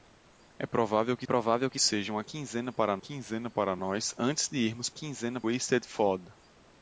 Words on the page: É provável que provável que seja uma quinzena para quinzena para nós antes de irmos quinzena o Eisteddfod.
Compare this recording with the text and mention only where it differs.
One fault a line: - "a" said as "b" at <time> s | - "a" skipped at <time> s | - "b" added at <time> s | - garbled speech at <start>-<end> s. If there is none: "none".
none